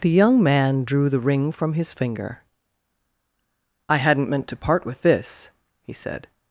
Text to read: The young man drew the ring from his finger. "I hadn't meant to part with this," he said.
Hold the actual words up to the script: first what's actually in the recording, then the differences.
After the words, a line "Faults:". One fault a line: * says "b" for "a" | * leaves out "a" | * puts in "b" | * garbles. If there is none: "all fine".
The young man drew the ring from his finger. "I hadn't meant to part with this," he said.
Faults:
all fine